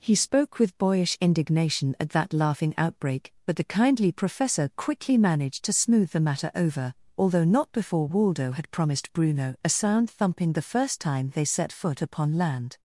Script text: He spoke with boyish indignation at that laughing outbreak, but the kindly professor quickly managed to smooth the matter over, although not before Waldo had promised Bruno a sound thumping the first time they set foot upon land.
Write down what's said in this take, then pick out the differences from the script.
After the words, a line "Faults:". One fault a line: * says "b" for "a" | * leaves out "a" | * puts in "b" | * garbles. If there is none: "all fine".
He spoke with boyish indignation at that laughing outbreak, but the kindly professor quickly managed to smooth the matter over, although not before Waldo had promised Bruno a sound thumping the first time they set foot upon land.
Faults:
all fine